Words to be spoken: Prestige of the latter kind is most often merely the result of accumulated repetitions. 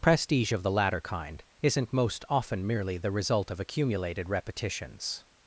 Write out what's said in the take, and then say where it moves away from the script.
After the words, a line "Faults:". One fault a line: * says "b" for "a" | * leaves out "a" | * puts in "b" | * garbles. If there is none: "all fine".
Prestige of the latter kind isn't most often merely the result of accumulated repetitions.
Faults:
* says "isn't" for "is"